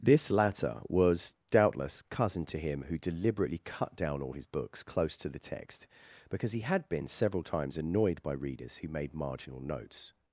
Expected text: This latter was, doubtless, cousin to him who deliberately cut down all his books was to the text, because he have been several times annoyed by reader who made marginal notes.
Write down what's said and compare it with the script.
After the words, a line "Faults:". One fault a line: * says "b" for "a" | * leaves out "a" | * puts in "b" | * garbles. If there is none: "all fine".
This latter was, doubtless, cousin to him who deliberately cut down all his books close to the text, because he had been several times annoyed by readers who made marginal notes.
Faults:
* says "close" for "was"
* says "had" for "have"
* says "readers" for "reader"